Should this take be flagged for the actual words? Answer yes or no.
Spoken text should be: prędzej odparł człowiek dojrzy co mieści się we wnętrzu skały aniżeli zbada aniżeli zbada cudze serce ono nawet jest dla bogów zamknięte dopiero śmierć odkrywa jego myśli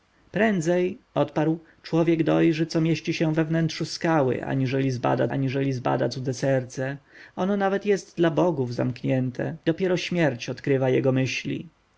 no